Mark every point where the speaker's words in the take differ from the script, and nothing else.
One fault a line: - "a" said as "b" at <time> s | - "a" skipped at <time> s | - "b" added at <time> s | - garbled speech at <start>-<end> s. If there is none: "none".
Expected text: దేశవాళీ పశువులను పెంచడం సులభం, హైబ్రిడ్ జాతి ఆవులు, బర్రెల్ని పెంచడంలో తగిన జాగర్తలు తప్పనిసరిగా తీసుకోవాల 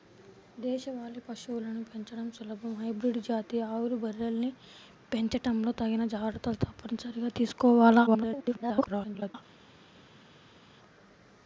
- garbled speech at 8.1-9.4 s